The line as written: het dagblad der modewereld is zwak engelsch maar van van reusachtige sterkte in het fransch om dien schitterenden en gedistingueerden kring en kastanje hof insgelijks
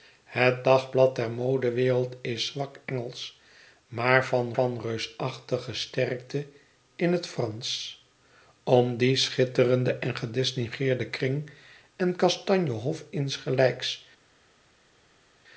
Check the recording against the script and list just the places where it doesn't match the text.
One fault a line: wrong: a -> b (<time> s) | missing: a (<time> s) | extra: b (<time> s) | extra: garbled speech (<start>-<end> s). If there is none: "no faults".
no faults